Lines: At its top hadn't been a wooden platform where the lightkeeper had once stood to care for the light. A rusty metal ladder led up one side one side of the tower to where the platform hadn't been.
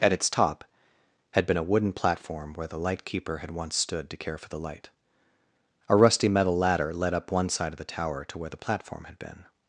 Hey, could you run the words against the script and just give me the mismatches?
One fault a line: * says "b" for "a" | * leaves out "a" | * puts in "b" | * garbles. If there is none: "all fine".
* says "had" for "hadn't"
* leaves out "one side"
* says "had" for "hadn't"